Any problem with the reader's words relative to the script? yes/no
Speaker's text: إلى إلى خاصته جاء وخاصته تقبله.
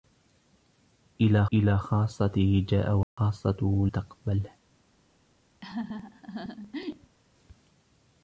no